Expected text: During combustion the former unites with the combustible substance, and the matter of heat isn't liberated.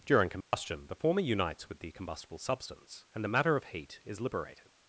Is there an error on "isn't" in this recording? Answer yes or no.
yes